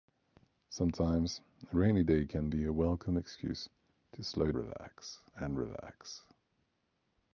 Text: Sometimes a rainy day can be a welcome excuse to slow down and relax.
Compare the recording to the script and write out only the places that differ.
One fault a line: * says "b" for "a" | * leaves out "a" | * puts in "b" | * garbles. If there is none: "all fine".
* says "relax" for "down"